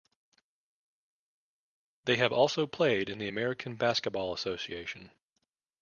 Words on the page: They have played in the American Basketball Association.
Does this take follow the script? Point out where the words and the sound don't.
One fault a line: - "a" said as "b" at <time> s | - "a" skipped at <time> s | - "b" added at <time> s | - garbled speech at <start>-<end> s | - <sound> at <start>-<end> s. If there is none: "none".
- "also" added at 2.3 s